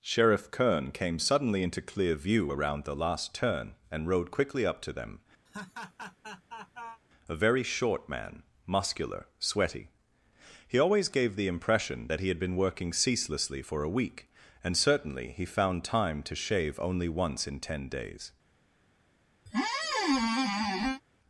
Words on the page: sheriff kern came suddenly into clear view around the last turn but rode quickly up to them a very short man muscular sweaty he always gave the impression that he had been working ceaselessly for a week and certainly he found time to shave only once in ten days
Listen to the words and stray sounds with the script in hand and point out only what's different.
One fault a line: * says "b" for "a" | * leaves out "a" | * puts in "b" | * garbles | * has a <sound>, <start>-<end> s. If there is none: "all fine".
* says "and" for "but"
* has a laugh, 5.5-7.0 s
* has a squeak, 19.5-21.0 s